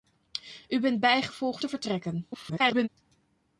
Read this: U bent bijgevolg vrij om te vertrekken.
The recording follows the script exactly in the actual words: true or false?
false